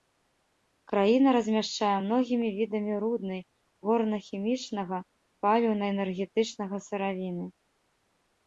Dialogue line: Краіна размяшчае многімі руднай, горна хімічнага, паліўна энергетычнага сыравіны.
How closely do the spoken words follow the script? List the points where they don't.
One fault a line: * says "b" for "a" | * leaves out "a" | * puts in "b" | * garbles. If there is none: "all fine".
* puts in "відамі"